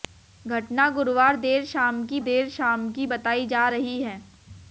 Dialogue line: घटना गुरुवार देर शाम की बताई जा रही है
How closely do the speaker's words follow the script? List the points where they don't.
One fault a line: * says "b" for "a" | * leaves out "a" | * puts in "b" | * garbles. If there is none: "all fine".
* puts in "देर शाम की"